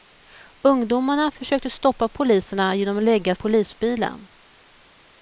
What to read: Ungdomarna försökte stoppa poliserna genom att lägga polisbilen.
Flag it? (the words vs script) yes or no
no